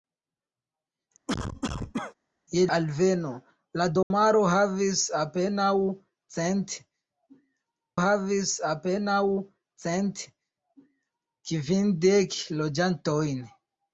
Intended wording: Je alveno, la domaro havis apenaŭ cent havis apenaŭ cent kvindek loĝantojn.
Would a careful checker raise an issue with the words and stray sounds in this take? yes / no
yes